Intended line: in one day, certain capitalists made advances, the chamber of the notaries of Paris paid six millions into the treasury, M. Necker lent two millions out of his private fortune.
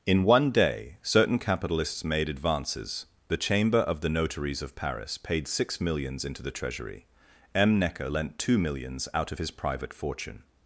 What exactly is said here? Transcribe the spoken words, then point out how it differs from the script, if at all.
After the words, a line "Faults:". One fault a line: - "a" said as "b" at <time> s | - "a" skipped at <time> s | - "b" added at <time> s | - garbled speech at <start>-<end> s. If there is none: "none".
in one day, certain capitalists made advances, the chamber of the notaries of Paris paid six millions into the treasury, M. Necker lent two millions out of his private fortune.
Faults:
none